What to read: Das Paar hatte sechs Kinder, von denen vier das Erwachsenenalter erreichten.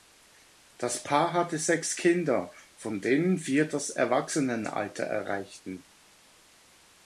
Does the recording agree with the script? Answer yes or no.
yes